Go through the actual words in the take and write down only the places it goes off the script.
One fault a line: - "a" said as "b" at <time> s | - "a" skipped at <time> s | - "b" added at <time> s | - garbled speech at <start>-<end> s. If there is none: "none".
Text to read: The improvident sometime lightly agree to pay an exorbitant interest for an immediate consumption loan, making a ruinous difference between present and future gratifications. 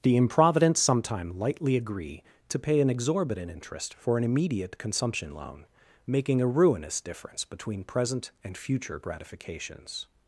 none